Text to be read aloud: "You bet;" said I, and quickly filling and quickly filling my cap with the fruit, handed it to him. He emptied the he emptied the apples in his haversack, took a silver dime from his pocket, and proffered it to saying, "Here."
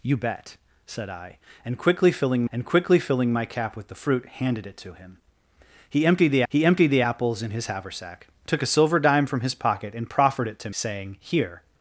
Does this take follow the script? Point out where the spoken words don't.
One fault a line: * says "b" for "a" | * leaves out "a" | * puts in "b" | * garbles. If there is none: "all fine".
all fine